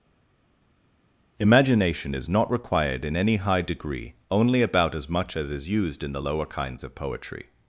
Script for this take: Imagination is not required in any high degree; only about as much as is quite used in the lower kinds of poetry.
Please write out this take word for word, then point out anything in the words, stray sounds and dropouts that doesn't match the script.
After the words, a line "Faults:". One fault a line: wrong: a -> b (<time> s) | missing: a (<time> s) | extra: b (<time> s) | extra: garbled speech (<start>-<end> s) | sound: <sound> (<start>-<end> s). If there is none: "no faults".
Imagination is not required in any high degree; only about as much as is used in the lower kinds of poetry.
Faults:
missing: quite (5.7 s)